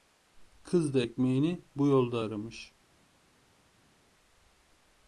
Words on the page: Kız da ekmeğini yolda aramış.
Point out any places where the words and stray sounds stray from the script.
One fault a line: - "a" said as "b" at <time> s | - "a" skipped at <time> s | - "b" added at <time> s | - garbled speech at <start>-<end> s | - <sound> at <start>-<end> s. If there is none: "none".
- "bu" added at 1.8 s